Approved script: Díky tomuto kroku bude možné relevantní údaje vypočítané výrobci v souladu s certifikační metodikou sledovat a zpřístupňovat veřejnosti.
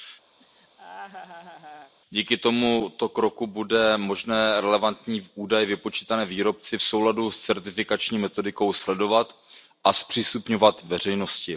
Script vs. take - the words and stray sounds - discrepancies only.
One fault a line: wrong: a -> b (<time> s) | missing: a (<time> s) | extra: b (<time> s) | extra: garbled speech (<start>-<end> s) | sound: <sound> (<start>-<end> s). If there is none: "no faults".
sound: laugh (0.4-1.9 s)